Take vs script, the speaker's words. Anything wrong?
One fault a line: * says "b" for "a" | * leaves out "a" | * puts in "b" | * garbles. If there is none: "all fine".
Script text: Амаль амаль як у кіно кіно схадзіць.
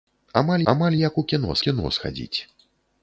all fine